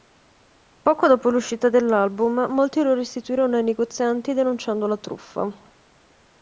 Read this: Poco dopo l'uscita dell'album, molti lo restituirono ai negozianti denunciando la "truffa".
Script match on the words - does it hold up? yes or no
yes